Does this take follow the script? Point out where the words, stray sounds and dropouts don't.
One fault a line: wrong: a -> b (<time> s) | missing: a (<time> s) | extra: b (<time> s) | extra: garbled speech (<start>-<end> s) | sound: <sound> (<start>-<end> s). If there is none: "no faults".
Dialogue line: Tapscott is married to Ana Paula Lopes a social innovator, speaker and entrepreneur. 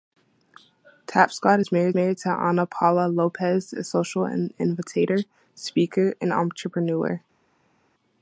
extra: married (1.9 s)